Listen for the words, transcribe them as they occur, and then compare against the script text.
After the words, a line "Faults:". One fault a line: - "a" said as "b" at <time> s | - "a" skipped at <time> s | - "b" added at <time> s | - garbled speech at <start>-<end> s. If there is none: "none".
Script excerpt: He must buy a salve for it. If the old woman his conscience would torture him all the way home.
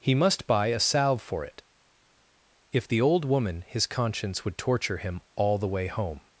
He must buy a salve for it. If the old woman his conscience would torture him all the way home.
Faults:
none